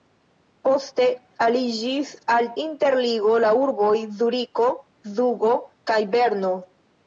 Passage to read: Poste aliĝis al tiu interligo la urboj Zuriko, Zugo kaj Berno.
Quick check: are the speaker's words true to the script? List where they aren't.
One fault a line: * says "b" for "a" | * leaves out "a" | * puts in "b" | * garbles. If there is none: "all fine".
* leaves out "tiu"